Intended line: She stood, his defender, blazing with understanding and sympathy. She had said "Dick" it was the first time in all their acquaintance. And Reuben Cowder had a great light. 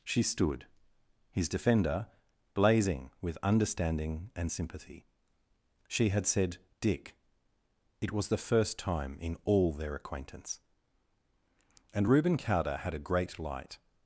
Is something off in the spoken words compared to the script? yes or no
no